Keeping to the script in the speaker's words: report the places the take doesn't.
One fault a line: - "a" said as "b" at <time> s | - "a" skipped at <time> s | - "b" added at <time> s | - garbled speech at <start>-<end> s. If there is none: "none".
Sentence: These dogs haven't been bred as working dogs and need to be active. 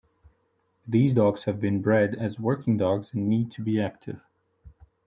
- "haven't" said as "have" at 1.4 s